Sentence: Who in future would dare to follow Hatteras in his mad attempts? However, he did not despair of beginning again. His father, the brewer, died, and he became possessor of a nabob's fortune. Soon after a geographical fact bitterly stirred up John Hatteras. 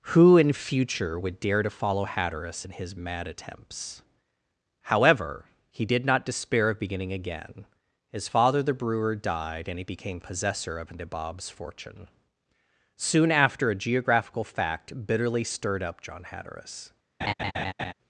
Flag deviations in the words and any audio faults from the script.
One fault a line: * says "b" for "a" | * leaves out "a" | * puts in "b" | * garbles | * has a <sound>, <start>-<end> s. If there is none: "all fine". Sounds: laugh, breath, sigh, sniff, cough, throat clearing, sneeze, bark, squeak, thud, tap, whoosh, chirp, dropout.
* leaves out "a"
* has a laugh, 17.2-17.9 s